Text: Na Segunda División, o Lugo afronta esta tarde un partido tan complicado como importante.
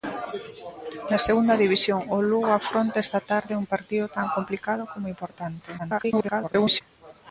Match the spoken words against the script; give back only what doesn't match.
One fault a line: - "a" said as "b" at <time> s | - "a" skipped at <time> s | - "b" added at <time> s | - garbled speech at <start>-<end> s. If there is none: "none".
- garbled speech at 5.8-6.8 s